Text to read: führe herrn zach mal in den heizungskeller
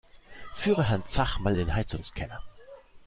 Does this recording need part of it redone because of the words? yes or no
yes